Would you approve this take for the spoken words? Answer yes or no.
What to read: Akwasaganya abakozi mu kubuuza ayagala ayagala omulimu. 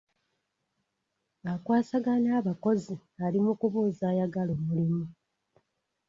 no